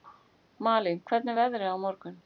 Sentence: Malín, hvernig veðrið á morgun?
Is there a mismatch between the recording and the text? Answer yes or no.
no